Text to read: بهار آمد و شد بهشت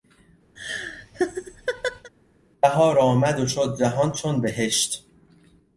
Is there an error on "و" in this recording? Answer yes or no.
no